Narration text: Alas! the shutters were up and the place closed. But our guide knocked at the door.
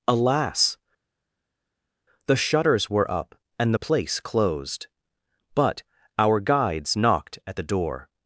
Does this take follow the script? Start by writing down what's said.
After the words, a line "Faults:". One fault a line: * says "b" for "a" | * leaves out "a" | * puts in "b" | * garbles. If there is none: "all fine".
Alas! the shutters were up and the place closed. But our guides knocked at the door.
Faults:
* says "guides" for "guide"